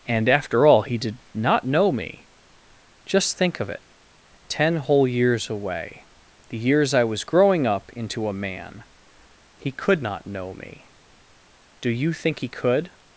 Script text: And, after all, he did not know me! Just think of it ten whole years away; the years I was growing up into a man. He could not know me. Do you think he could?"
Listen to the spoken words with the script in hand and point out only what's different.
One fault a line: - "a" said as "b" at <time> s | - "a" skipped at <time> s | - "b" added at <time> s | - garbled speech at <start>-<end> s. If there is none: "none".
none